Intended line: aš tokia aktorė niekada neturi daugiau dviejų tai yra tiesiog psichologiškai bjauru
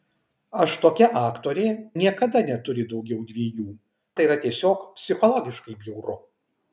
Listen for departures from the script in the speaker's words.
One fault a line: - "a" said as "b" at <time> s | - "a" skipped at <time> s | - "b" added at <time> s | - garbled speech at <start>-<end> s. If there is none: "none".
none